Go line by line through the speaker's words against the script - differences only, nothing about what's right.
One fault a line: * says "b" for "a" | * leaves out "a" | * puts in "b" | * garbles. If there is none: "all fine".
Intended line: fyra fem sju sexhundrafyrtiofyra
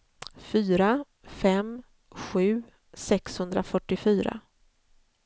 all fine